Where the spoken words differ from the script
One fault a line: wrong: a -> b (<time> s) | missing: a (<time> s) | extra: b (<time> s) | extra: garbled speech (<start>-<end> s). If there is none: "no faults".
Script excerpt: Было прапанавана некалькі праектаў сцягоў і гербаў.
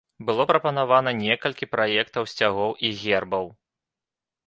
no faults